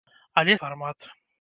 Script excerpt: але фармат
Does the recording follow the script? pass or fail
pass